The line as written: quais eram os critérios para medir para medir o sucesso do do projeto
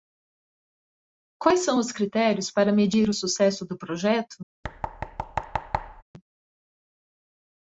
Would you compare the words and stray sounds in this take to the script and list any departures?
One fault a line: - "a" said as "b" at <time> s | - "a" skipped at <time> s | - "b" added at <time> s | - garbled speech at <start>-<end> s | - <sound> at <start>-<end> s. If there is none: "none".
- "eram" said as "são" at 1.6 s
- "para medir" skipped at 3.1 s
- "do" skipped at 3.8 s
- thud at 4.6-6.0 s